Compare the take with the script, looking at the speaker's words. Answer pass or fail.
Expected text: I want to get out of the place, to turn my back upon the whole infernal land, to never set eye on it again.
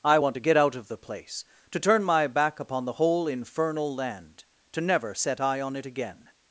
pass